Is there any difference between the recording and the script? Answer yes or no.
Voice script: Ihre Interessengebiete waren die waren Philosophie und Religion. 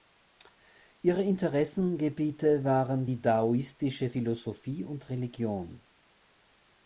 yes